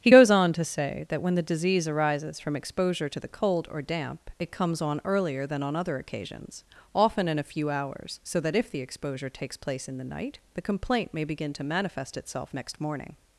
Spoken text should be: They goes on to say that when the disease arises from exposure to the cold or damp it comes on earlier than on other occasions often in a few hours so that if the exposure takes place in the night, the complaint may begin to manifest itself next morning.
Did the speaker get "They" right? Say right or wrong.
wrong